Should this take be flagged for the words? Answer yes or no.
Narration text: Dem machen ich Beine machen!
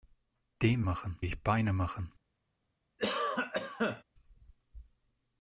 no